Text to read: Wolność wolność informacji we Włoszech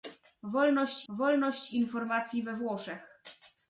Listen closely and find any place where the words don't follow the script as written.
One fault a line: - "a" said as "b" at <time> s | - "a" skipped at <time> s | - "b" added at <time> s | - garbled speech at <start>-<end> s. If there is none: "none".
none